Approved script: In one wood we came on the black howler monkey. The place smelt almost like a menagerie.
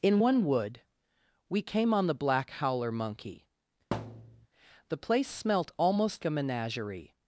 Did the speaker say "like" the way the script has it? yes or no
no